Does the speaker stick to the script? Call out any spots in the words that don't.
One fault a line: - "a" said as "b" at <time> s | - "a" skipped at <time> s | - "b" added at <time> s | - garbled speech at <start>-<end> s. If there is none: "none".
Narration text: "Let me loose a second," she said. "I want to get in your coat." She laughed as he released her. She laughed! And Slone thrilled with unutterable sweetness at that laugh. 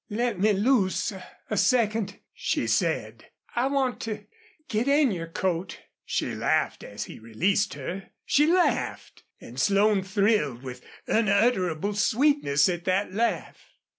none